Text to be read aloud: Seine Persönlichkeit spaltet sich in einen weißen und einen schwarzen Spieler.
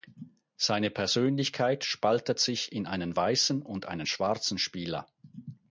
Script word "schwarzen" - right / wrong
right